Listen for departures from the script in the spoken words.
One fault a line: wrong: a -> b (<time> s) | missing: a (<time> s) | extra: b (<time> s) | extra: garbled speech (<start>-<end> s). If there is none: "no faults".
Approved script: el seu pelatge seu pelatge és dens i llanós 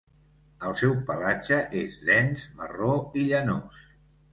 missing: seu pelatge (1.6 s)
extra: marró (2.6 s)